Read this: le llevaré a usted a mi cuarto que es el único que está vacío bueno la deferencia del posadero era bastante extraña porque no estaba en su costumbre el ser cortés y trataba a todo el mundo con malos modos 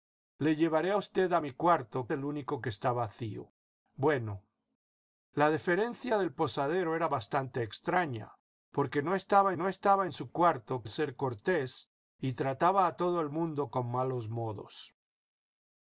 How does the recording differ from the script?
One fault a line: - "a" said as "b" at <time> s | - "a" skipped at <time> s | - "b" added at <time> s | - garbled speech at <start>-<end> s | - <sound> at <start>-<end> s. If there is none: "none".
- "que es" skipped at 2.1 s
- "no estaba" added at 9.5 s
- "costumbre" said as "cuarto" at 10.3 s